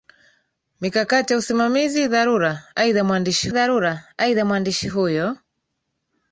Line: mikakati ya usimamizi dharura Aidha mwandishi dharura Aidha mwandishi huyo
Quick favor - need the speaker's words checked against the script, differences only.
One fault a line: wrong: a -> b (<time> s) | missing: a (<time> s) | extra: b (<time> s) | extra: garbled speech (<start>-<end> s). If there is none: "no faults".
no faults